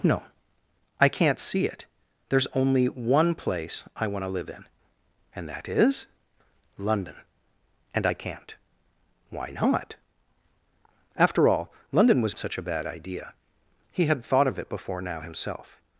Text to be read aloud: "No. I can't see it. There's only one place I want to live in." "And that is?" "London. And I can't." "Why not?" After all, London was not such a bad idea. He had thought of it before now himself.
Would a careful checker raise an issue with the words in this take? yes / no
yes